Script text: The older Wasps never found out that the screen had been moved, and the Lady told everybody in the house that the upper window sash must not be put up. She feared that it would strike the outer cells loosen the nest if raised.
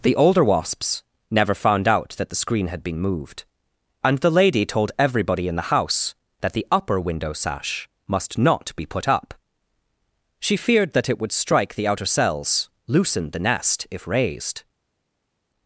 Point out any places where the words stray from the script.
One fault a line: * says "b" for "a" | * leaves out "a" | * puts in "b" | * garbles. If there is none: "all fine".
all fine